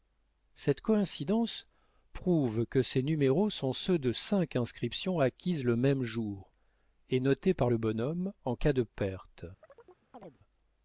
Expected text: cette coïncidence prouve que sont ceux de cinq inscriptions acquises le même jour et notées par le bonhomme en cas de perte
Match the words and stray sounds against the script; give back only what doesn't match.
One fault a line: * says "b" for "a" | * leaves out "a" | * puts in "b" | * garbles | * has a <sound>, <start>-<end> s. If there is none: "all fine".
* puts in "ces numéros"
* has a chirp, 9.6-10.4 s